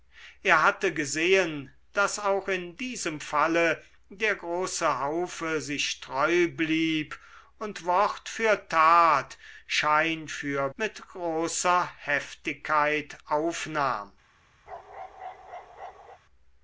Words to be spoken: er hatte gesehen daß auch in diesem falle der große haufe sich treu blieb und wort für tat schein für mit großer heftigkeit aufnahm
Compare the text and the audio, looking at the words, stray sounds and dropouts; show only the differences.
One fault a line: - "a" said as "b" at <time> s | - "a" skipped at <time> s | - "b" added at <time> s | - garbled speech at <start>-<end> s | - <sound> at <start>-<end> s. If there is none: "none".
- bark at 14.7-16.2 s